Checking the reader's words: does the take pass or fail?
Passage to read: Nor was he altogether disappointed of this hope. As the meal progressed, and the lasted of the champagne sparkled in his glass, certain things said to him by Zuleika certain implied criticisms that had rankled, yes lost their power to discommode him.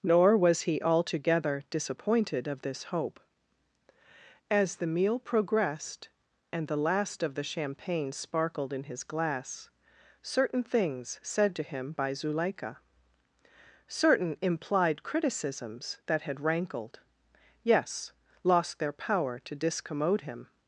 fail